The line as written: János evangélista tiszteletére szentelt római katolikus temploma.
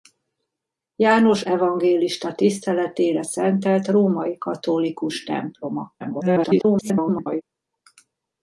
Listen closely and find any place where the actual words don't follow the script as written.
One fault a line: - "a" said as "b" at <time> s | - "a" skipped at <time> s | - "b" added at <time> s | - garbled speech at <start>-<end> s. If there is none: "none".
- garbled speech at 6.0-7.4 s